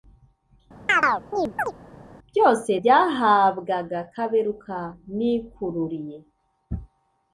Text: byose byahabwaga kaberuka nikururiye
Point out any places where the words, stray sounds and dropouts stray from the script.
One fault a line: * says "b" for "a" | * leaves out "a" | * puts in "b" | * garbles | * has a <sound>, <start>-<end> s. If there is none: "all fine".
* has a chirp, 0.9-1.7 s